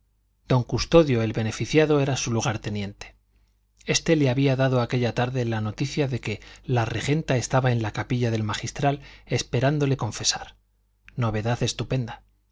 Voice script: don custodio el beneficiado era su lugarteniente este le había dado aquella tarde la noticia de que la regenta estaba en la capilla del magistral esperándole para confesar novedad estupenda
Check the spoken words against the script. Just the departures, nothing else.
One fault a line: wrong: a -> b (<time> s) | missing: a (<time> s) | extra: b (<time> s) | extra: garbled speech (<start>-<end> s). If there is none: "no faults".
missing: para (10.0 s)